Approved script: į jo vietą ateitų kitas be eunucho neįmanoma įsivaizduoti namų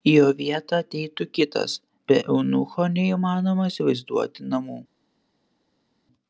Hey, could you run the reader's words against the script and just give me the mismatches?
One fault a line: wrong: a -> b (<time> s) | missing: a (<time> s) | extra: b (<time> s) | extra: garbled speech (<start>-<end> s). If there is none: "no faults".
no faults